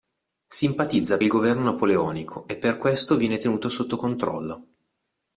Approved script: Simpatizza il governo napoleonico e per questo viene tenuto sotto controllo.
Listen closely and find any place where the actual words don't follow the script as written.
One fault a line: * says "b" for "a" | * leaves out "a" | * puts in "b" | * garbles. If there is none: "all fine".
all fine